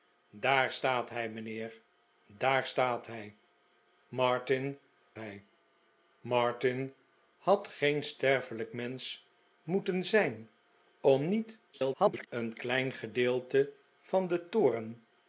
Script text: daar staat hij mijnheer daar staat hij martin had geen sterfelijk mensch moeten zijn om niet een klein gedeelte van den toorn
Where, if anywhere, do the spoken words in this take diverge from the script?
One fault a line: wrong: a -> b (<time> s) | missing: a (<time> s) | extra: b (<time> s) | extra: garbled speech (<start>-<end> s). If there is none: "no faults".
extra: hij martin (5.2 s)
extra: garbled speech (11.7-12.3 s)